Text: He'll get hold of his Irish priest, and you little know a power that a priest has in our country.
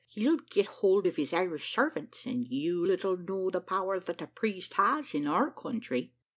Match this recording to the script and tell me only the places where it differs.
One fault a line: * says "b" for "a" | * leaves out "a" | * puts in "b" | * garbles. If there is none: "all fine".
* says "servants" for "priest"
* says "the" for "a"